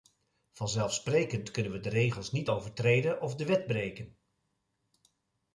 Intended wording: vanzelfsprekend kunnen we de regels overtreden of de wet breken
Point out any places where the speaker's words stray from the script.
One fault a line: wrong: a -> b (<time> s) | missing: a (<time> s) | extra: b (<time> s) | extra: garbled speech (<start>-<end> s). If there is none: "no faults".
extra: niet (2.3 s)